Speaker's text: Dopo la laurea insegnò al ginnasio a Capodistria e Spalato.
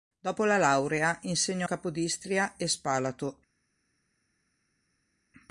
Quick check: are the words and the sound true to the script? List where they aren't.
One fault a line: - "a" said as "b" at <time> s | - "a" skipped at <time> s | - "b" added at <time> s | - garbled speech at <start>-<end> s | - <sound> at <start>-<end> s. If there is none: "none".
- "al ginnasio a" skipped at 1.7 s